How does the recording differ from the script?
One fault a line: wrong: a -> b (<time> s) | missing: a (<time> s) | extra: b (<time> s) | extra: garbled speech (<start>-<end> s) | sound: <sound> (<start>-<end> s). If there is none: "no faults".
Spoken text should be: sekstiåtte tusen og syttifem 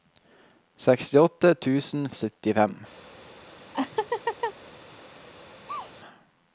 sound: laugh (3.7-4.5 s)
sound: sneeze (5.7-5.9 s)